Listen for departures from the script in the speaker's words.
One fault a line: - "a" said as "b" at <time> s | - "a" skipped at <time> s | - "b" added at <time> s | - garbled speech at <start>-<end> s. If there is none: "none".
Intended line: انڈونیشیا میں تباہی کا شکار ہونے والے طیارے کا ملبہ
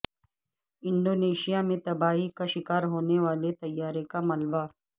none